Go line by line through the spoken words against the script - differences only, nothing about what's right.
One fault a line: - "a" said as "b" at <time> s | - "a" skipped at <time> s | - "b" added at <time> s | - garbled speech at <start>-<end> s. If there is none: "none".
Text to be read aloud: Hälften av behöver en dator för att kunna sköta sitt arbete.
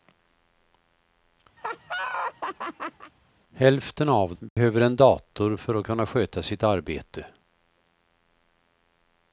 none